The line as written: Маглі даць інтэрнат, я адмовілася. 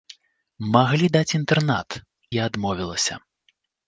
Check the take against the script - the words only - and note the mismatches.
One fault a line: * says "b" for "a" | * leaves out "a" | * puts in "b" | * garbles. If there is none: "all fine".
all fine